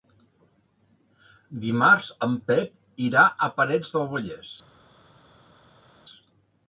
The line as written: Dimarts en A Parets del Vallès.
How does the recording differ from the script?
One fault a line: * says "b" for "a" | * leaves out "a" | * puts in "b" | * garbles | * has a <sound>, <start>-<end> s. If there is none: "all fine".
* puts in "Pep irà"